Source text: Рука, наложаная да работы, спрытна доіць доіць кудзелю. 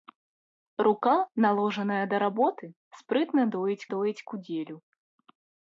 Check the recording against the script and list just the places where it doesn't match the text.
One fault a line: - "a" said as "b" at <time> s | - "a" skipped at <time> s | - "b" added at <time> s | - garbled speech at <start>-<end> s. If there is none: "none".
none